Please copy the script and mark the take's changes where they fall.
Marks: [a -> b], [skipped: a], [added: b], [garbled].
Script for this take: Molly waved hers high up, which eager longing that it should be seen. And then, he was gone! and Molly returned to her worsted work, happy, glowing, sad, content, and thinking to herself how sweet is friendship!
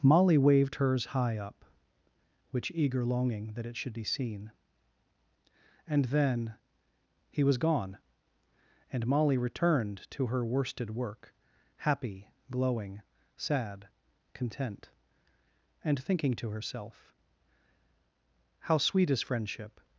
Molly waved hers high up, which eager longing that it should be seen. And then, he was gone! and Molly returned to her worsted work, happy, glowing, sad, content, and thinking to herself how sweet is friendship!